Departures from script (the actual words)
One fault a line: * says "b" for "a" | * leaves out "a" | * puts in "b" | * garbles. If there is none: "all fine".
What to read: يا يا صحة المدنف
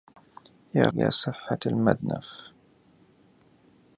all fine